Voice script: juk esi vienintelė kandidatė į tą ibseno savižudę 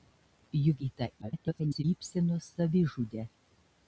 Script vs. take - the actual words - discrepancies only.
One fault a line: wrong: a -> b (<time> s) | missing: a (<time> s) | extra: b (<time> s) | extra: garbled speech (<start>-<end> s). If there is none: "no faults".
missing: esi vienintelė kandidatė (0.8 s)
extra: garbled speech (1.2-1.8 s)